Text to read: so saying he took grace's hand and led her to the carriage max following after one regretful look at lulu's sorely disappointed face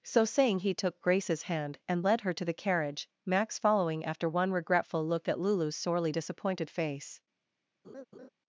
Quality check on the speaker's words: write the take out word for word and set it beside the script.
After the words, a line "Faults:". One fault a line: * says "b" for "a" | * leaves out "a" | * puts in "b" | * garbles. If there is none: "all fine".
so saying he took grace's hand and led her to the carriage max following after one regretful look at lulu's sorely disappointed face
Faults:
all fine